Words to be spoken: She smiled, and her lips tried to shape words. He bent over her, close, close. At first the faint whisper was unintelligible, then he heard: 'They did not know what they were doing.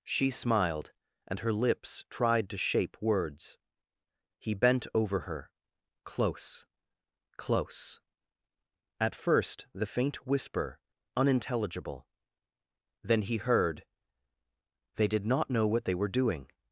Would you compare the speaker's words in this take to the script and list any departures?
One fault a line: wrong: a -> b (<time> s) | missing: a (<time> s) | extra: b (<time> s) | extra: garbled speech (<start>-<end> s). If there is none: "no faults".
missing: was (10.8 s)